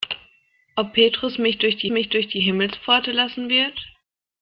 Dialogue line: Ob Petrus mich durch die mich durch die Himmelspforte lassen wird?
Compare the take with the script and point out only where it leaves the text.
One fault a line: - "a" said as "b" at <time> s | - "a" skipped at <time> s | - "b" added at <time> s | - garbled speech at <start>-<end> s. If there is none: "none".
none